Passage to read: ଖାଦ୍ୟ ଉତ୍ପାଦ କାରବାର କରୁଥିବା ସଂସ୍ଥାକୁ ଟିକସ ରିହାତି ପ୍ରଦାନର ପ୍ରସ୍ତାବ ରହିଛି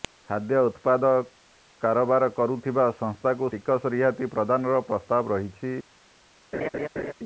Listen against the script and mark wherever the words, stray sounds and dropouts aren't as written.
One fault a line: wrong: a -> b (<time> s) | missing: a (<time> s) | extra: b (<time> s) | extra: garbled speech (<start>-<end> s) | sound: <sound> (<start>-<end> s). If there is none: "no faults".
sound: laugh (6.5-7.1 s)